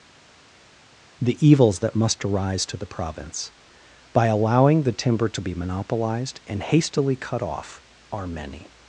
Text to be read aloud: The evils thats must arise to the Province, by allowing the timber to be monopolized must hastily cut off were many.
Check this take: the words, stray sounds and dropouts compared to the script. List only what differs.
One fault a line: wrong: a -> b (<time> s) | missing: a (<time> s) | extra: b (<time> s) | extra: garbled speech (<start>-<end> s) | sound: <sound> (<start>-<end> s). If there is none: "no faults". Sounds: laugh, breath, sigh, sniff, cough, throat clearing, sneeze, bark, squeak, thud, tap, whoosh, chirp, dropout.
wrong: thats -> that (1.8 s)
wrong: must -> and (6.5 s)
wrong: were -> are (8.1 s)